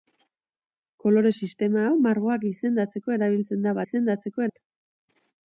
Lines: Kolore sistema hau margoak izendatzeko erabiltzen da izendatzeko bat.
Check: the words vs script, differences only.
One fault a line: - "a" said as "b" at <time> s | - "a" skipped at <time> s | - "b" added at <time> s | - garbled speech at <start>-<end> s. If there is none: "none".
none